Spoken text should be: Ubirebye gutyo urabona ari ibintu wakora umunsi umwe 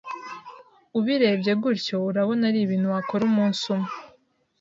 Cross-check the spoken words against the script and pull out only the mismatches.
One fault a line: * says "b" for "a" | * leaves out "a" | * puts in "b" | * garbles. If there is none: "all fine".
all fine